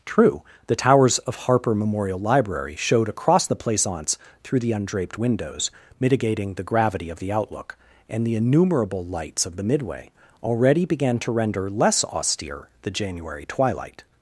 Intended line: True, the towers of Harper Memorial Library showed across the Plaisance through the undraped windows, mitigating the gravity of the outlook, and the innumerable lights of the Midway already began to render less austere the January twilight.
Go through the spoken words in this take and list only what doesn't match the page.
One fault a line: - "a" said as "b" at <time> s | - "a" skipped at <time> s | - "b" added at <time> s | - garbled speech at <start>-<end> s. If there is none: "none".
none